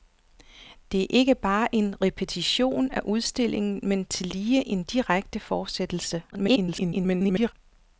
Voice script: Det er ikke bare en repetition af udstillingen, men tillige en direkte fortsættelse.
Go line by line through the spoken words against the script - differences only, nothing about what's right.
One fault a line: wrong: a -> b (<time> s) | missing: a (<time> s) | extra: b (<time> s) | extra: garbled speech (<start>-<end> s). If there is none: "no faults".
extra: garbled speech (6.3-7.5 s)